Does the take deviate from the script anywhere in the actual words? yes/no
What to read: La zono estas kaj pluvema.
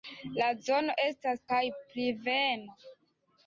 no